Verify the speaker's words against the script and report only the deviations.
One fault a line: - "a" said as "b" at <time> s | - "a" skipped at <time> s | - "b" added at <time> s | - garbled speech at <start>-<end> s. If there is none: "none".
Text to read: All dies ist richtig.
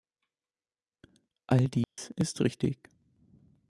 none